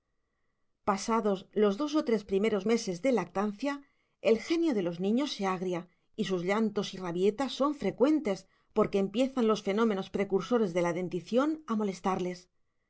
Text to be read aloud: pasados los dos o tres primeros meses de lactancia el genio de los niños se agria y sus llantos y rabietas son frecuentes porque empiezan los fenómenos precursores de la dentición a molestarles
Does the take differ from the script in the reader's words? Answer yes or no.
no